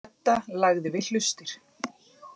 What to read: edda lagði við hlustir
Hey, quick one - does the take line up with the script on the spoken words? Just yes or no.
yes